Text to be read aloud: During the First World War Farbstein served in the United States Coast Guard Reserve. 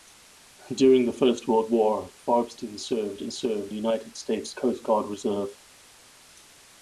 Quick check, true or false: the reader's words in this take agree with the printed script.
false